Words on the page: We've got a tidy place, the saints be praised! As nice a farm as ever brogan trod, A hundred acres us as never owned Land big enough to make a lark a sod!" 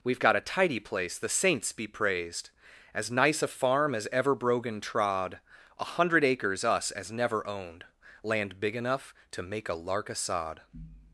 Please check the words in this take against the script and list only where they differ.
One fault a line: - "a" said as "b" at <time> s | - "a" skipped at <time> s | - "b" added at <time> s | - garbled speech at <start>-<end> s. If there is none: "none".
none